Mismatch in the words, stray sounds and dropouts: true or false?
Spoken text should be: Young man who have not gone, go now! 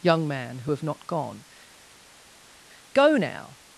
false